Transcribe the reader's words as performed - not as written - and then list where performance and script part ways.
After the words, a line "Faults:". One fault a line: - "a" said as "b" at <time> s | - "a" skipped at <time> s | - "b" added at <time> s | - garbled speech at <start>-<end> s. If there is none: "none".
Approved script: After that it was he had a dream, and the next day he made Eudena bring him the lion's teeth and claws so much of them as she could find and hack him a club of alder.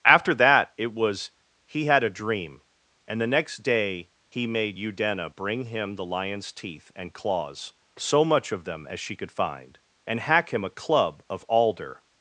After that it was he had a dream, and the next day he made Eudena bring him the lion's teeth and claws so much of them as she could find and hack him a club of alder.
Faults:
none